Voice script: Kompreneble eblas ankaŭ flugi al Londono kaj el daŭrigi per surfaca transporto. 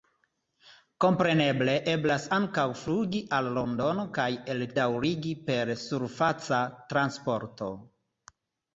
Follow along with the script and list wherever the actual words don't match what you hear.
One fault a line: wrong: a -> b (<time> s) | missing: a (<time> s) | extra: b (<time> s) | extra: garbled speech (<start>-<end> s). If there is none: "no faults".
no faults